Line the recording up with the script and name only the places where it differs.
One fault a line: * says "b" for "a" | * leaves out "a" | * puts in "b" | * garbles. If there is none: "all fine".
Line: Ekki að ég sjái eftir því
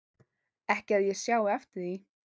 all fine